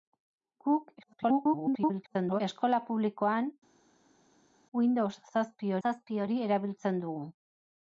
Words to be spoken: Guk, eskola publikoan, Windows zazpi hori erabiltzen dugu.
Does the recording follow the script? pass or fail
fail